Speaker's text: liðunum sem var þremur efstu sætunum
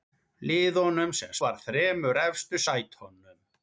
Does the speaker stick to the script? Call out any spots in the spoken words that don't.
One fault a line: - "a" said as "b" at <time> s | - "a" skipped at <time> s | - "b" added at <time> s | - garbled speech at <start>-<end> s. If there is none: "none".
none